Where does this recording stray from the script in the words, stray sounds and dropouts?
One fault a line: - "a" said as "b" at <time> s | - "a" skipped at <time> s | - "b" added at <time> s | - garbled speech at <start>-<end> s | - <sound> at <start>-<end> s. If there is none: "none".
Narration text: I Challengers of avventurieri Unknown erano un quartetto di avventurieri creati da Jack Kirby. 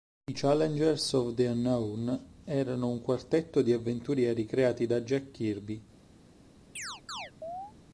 - "avventurieri" said as "the" at 1.3 s
- chirp at 6.8-7.7 s